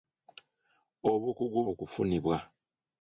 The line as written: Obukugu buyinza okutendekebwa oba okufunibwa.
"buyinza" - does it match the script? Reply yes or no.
no